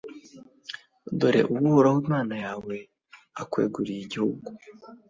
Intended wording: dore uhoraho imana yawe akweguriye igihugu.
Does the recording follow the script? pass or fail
pass